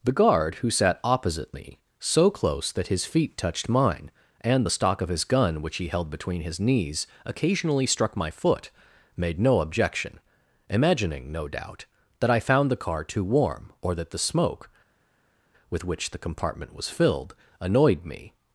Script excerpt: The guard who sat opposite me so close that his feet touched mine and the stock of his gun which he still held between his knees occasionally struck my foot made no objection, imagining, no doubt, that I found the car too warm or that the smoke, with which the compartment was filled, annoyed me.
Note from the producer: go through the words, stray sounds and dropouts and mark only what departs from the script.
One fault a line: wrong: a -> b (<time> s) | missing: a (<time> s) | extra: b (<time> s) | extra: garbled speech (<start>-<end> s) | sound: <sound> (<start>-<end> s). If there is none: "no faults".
missing: still (5.9 s)